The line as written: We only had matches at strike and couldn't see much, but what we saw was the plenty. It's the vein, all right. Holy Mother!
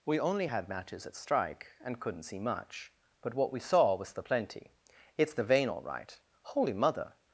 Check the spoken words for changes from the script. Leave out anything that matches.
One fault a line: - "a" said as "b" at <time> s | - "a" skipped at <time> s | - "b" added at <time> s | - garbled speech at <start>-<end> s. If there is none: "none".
none